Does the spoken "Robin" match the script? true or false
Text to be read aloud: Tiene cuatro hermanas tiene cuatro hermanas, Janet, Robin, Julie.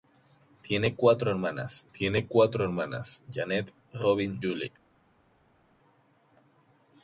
true